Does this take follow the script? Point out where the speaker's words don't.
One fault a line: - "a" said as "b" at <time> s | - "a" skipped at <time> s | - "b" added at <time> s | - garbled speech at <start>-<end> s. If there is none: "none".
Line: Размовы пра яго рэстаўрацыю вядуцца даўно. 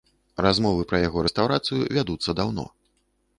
none